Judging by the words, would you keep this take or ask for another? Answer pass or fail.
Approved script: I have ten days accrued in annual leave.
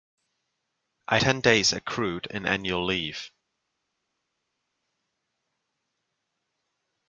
fail